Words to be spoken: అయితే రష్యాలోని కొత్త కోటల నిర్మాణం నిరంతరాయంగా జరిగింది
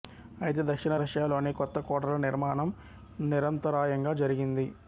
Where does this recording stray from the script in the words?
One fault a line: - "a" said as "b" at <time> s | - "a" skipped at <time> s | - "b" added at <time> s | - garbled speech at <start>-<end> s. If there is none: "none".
- "దక్షిణ" added at 0.6 s